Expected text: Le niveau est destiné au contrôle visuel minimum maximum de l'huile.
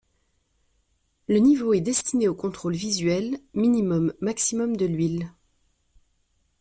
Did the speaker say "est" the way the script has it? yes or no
yes